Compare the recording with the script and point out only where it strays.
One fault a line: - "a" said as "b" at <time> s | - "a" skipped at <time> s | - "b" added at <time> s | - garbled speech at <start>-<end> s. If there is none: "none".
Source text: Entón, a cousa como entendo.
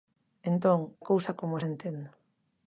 none